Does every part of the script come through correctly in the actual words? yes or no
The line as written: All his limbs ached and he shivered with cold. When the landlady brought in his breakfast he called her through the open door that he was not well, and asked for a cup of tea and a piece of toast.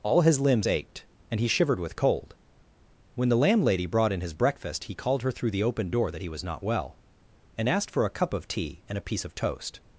yes